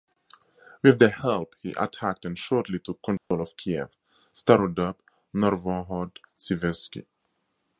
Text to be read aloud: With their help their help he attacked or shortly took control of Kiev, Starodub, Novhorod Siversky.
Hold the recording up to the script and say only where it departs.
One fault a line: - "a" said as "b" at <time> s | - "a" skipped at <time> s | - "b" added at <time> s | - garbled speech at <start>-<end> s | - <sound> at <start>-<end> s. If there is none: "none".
- "their help" skipped at 1.6 s
- "or" said as "and" at 2.2 s
- dropout at 3.2-3.3 s